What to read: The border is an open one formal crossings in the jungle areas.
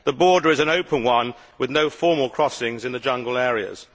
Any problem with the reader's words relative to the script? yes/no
yes